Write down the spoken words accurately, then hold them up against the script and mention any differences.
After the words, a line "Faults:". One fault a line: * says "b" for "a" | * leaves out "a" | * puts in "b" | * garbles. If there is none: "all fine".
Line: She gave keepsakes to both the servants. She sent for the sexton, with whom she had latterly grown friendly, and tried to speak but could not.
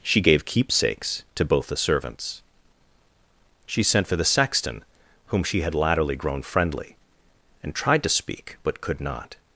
She gave keepsakes to both the servants. She sent for the sexton, whom she had latterly grown friendly, and tried to speak but could not.
Faults:
* leaves out "with"